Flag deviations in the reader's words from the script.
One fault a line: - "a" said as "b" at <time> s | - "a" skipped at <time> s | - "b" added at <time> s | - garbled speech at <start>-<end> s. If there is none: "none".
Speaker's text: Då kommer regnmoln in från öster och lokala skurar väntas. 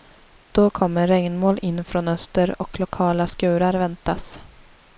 none